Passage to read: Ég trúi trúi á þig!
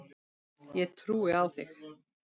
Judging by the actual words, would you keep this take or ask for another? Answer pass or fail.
fail